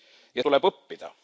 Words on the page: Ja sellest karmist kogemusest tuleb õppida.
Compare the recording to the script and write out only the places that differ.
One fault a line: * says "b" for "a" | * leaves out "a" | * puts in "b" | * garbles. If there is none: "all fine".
* leaves out "sellest karmist kogemusest"